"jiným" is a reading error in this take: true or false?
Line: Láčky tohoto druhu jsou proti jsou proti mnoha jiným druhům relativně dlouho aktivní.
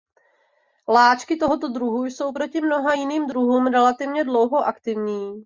false